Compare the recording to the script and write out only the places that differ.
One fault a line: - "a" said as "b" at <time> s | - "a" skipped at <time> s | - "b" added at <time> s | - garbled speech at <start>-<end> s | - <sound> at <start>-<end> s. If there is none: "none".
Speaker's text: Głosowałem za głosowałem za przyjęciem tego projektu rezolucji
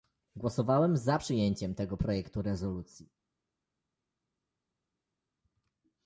- "głosowałem za" skipped at 1.2 s